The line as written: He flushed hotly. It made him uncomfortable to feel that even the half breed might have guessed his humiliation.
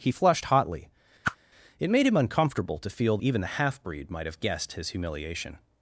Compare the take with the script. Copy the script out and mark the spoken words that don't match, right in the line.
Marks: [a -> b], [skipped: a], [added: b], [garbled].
He flushed hotly. It made him uncomfortable to feel [skipped: that] even the half breed might have guessed his humiliation.